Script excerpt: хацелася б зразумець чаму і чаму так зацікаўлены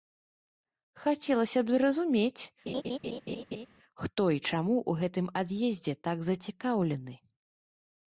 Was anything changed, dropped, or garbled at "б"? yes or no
no